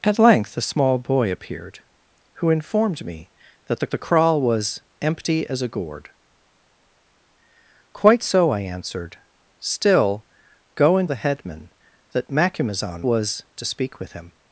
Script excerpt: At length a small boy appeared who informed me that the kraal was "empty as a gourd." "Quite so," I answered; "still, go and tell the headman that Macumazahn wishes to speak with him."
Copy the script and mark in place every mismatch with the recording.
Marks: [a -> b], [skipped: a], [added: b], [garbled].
At length a small boy appeared who informed me that the [added: the] kraal was "empty as a gourd." "Quite so," I answered; "still, go and [skipped: tell] the headman that Macumazahn [wishes -> was] to speak with him."